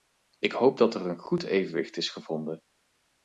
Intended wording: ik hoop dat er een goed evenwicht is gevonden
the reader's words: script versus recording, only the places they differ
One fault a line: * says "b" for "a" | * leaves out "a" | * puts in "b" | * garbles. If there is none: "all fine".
all fine